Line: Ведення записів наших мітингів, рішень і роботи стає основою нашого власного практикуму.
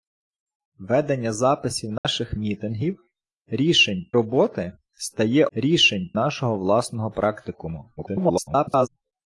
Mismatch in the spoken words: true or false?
true